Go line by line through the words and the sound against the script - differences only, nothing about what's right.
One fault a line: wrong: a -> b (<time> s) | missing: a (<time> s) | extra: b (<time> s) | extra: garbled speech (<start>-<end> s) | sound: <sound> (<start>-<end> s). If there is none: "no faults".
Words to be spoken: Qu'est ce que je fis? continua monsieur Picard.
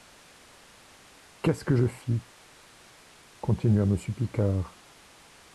no faults